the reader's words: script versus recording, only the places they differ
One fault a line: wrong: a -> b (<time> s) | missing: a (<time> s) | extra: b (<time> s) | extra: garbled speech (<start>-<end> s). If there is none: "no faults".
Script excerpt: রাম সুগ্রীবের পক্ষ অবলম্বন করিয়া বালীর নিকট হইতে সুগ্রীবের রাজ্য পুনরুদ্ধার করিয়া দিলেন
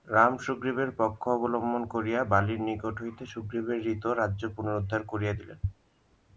extra: হৃত (3.8 s)